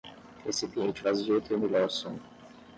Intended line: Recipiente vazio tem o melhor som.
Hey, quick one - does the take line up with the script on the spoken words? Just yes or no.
yes